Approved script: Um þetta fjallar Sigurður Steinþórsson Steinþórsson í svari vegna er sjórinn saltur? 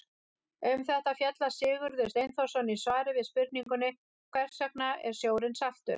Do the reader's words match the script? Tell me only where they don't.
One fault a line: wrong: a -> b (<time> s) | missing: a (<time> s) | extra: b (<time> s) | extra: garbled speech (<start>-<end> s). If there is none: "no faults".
missing: Steinþórsson (2.7 s)
extra: við spurningunni Hvers (3.2 s)